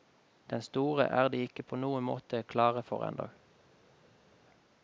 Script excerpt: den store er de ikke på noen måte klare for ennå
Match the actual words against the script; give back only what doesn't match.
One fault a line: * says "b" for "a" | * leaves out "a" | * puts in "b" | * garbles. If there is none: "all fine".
all fine